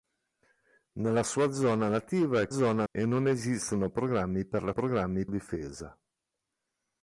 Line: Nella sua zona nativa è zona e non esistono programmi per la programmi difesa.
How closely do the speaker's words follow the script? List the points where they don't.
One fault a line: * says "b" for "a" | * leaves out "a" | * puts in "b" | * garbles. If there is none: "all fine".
all fine